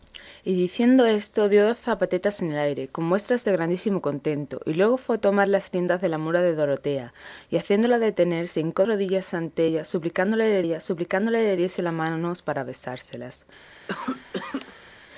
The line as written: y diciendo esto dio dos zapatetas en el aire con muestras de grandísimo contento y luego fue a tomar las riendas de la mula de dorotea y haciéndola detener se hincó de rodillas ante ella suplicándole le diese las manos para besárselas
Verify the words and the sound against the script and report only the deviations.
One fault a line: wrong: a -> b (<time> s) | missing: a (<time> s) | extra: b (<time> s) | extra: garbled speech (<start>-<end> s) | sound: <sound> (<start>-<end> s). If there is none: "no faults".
missing: de (8.8 s)
extra: ella suplicándole le (10.6 s)
sound: cough (13.9-14.9 s)